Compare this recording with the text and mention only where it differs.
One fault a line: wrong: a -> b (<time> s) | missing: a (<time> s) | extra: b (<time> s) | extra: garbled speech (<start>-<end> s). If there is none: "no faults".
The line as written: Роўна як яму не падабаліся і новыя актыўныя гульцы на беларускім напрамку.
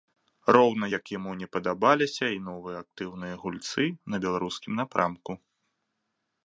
no faults